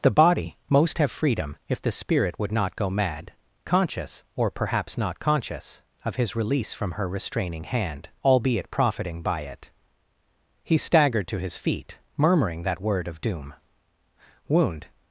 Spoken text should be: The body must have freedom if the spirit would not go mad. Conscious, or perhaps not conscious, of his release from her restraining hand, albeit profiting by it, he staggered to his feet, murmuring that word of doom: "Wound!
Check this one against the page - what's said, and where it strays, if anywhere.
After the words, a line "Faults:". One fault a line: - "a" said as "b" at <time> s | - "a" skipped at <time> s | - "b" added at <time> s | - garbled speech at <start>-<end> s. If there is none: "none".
The body most have freedom if the spirit would not go mad. Conscious, or perhaps not conscious, of his release from her restraining hand, albeit profiting by it, he staggered to his feet, murmuring that word of doom: "Wound!
Faults:
- "must" said as "most" at 0.7 s